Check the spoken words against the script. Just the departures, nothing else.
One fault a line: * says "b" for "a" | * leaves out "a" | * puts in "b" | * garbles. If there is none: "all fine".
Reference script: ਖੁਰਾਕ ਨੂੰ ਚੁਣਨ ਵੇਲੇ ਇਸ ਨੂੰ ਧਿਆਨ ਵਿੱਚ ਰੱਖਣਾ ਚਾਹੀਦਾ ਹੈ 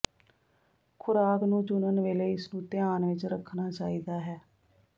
all fine